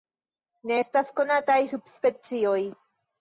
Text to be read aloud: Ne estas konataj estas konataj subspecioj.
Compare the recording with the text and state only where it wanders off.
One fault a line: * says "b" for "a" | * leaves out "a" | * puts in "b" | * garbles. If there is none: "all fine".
* leaves out "estas konataj"